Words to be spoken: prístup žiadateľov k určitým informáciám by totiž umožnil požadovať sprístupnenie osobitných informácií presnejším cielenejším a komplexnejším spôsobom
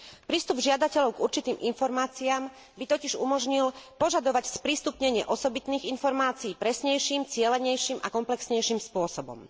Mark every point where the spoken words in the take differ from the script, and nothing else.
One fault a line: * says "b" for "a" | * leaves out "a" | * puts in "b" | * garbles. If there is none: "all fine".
all fine